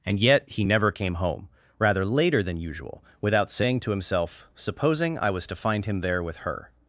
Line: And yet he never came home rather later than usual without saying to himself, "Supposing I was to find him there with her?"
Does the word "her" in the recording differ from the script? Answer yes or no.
no